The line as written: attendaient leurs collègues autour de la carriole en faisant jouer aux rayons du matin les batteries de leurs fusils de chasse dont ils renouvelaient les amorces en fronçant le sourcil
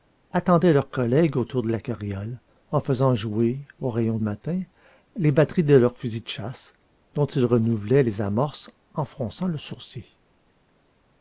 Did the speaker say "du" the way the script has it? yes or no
no